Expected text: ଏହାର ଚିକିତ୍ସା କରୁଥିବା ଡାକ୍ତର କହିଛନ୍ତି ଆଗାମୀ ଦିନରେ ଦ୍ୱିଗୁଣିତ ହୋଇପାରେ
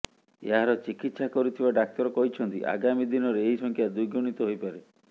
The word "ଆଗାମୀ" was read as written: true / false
true